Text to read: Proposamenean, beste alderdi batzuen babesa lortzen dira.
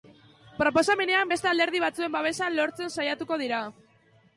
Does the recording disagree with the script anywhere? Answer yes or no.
yes